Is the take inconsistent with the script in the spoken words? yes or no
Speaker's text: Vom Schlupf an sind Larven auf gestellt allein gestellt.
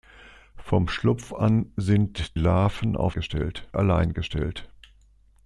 no